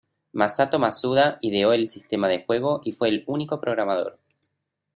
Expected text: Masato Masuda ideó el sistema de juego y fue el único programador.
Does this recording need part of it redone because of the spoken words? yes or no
no